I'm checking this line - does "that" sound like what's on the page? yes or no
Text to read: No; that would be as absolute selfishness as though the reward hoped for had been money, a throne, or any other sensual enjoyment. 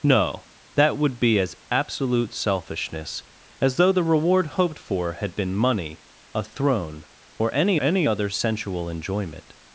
yes